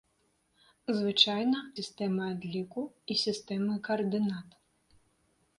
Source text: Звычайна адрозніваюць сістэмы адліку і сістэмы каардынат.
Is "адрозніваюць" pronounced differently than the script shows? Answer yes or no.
yes